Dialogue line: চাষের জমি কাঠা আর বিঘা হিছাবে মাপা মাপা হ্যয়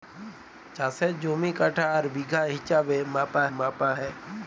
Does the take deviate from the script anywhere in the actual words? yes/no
no